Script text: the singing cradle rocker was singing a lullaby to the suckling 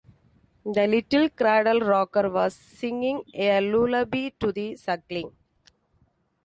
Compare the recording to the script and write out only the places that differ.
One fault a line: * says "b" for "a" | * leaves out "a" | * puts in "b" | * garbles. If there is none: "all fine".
* says "little" for "singing"